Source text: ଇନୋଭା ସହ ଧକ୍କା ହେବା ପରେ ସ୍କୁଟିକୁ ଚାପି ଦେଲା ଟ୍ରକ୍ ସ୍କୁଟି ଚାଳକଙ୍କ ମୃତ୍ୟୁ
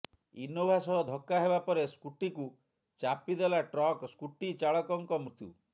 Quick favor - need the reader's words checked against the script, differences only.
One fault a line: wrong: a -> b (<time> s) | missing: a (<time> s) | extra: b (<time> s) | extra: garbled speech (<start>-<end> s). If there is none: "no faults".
no faults